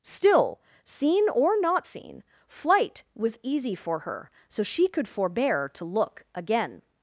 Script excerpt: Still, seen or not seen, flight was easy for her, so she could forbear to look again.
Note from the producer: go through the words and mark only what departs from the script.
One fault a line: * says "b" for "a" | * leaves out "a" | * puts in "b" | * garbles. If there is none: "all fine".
all fine